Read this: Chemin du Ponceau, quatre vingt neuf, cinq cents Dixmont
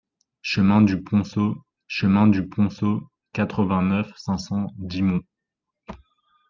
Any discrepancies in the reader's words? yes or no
yes